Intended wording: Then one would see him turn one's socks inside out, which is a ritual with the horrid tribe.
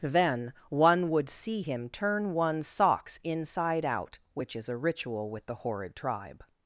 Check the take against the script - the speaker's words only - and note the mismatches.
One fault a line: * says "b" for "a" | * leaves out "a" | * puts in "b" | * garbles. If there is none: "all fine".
all fine